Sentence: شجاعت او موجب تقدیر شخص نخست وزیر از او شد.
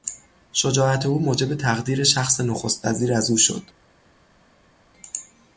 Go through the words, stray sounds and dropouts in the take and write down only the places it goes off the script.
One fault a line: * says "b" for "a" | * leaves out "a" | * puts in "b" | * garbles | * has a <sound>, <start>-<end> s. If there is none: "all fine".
all fine